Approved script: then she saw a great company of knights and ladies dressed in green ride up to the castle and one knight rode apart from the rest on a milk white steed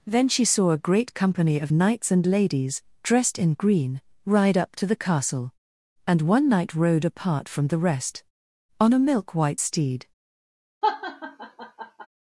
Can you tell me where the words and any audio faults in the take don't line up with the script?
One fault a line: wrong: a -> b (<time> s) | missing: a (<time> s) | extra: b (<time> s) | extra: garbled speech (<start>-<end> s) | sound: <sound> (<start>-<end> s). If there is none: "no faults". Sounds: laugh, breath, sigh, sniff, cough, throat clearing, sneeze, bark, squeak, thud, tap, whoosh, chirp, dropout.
sound: laugh (10.8-12.1 s)